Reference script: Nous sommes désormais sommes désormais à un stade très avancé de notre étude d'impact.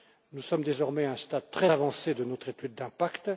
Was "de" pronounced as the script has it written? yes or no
yes